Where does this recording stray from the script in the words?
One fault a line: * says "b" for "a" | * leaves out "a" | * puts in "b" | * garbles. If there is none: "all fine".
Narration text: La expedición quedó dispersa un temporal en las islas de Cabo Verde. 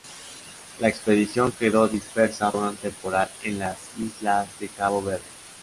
all fine